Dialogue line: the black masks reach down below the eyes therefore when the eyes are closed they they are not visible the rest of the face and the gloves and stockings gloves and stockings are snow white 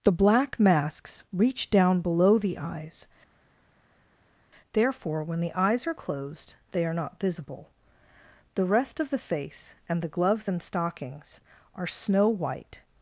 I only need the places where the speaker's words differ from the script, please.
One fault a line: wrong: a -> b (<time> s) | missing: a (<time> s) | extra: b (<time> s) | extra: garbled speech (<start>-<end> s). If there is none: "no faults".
missing: they (6.9 s)
missing: gloves and stockings (11.4 s)